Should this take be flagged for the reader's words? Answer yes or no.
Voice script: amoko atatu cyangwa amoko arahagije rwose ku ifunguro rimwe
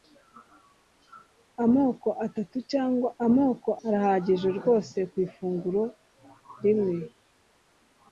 no